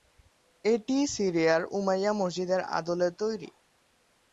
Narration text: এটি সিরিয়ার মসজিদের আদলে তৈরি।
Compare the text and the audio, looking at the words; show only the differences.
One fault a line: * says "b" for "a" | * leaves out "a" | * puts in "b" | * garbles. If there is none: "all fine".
* puts in "উমাইয়া"